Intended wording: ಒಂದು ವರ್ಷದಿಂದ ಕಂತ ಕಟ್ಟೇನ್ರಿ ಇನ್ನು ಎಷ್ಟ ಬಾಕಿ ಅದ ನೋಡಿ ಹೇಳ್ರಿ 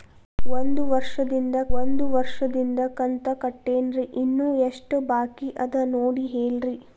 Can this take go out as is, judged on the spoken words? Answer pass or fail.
fail